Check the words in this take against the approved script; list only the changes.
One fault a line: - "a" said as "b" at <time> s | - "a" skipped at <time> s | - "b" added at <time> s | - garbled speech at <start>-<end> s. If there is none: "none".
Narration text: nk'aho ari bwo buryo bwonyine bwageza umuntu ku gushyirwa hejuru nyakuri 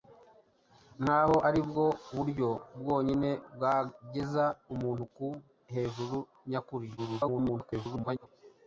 - "gushyirwa" skipped at 5.3 s
- garbled speech at 7.0-8.3 s